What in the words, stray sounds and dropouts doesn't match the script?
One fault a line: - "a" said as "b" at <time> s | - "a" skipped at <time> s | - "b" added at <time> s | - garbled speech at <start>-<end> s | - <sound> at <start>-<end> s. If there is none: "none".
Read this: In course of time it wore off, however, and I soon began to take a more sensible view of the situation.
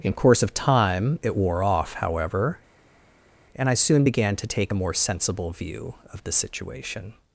none